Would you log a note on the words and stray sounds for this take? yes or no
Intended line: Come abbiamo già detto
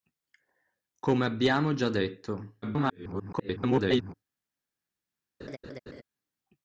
yes